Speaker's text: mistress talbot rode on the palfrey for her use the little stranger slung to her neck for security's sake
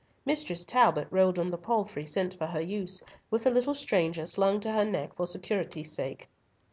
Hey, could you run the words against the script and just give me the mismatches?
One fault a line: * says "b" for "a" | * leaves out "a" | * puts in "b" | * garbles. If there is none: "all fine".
* puts in "sent"
* puts in "with"